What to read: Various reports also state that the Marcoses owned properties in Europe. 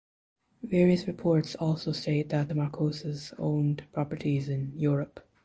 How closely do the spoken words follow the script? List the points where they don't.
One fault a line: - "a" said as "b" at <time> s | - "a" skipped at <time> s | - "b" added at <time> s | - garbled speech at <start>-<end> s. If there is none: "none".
none